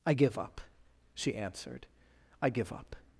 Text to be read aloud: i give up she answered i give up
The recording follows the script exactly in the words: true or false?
true